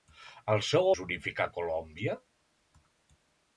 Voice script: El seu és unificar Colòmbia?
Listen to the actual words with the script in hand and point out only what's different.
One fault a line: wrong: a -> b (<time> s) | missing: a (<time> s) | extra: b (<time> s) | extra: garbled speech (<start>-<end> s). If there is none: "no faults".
no faults